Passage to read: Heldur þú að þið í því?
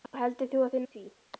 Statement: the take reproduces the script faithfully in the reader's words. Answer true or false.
true